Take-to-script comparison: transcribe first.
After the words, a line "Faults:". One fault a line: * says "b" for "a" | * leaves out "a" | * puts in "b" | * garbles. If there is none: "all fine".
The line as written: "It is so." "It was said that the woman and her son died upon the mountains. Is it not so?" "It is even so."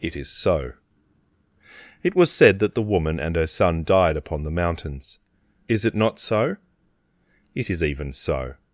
"It is so." "It was said that the woman and her son died upon the mountains. Is it not so?" "It is even so."
Faults:
all fine